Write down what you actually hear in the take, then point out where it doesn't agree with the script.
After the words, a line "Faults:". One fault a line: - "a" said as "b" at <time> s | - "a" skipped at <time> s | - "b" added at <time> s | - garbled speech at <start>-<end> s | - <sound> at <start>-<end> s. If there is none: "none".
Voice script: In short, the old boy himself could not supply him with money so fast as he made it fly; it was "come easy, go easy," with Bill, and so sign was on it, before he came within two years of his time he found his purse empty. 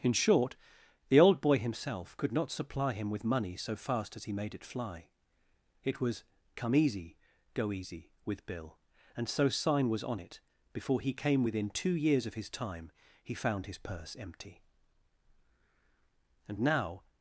In short, the old boy himself could not supply him with money so fast as he made it fly; it was "come easy, go easy," with Bill, and so sign was on it, before he came within two years of his time he found his purse empty. And now
Faults:
- "And now" added at 16.5 s